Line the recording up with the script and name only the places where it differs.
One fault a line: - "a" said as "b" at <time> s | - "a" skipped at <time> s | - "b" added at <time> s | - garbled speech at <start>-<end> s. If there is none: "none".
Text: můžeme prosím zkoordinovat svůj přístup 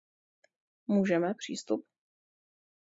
- "prosím zkoordinovat svůj" skipped at 1.3 s